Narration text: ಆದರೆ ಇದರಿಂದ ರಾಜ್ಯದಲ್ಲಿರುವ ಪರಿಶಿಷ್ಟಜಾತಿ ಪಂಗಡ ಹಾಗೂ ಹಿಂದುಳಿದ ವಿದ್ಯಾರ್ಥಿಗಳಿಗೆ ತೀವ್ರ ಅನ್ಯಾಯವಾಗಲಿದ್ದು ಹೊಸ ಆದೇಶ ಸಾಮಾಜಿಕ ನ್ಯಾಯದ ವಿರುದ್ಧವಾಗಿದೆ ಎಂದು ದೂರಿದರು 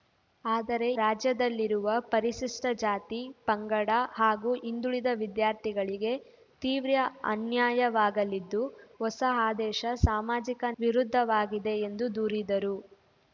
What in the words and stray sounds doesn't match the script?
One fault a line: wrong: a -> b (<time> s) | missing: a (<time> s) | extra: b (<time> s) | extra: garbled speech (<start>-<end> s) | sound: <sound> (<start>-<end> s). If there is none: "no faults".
missing: ಇದರಿಂದ (0.9 s)
missing: ನ್ಯಾಯದ (10.6 s)